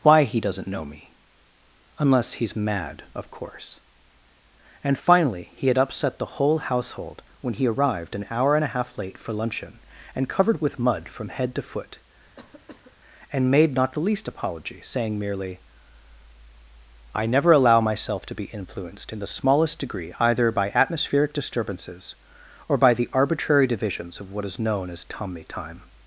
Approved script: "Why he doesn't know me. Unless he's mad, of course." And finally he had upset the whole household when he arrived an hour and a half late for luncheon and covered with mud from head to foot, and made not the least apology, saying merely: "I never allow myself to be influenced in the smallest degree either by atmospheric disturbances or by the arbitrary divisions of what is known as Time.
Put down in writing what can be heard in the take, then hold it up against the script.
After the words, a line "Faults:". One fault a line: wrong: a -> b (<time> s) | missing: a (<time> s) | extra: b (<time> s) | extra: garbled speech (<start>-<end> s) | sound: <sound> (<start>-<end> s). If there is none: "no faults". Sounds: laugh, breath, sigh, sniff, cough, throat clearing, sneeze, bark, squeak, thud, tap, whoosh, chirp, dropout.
"Why he doesn't know me. Unless he's mad, of course." And finally he had upset the whole household when he arrived an hour and a half late for luncheon and covered with mud from head to foot, and made not the least apology, saying merely: "I never allow myself to be influenced in the smallest degree either by atmospheric disturbances or by the arbitrary divisions of what is known as tommy Time.
Faults:
sound: cough (12.4-13.0 s)
extra: tommy (25.0 s)